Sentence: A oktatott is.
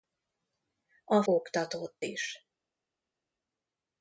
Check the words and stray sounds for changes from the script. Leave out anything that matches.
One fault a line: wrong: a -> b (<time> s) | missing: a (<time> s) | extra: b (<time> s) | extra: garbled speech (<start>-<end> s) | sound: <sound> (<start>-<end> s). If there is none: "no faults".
no faults